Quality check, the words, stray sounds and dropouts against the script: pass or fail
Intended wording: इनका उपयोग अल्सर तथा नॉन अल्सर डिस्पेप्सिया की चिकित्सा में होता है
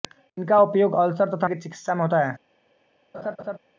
fail